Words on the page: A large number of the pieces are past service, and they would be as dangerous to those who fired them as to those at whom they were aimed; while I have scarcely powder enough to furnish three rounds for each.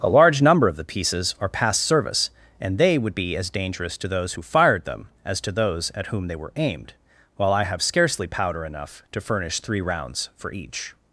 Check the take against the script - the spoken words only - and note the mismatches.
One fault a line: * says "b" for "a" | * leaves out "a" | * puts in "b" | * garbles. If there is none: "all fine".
all fine